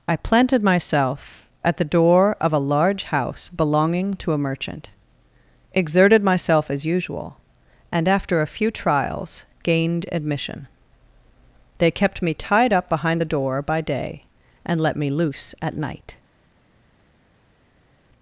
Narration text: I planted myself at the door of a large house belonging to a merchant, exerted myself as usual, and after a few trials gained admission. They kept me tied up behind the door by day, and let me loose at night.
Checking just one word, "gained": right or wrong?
right